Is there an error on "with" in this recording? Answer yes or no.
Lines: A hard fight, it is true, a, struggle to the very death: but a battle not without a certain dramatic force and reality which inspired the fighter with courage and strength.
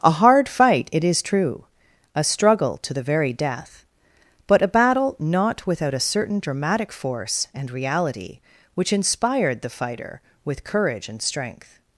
no